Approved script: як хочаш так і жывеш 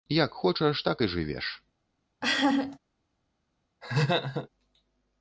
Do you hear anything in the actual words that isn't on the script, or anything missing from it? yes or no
no